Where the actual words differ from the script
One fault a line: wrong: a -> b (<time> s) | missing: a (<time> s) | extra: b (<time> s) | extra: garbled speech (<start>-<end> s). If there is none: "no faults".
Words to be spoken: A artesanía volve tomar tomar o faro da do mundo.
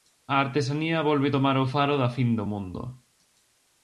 missing: tomar (1.6 s)
extra: fin (2.2 s)